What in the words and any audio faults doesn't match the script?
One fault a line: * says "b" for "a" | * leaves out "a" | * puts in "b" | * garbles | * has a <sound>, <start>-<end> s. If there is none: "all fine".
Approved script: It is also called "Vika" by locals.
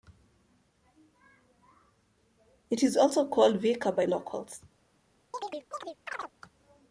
* has a chirp, 5.3-6.3 s